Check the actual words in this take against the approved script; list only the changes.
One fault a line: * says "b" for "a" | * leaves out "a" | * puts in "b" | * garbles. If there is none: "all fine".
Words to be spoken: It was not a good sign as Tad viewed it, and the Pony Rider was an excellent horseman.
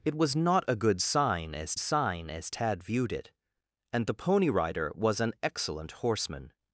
* puts in "sign as"